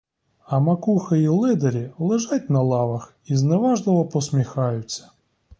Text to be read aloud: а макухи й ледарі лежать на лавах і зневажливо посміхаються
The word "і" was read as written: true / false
true